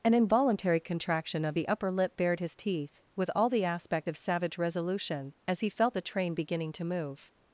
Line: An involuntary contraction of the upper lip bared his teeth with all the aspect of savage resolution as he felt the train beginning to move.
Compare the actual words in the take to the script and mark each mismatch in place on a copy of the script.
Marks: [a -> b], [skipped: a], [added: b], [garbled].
An involuntary contraction of the upper lip bared his teeth with all the aspect of savage resolution as he felt the train beginning to move.